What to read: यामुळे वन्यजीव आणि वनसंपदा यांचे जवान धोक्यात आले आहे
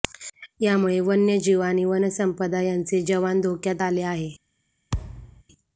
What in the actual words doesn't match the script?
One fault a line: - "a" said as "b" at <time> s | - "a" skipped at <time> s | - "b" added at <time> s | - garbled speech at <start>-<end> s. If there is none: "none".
none